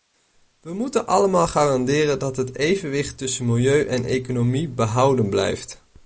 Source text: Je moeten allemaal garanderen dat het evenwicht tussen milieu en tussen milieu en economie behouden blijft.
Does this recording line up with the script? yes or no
no